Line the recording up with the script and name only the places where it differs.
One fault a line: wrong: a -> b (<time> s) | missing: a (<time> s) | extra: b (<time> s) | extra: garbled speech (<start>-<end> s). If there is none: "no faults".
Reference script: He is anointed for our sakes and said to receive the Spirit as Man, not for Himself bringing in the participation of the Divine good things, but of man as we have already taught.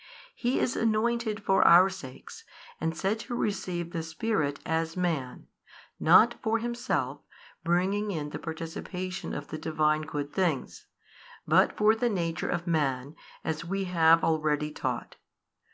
extra: for the nature (11.8 s)